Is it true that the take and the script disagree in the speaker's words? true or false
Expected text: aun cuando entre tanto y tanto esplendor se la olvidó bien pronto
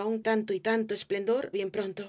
true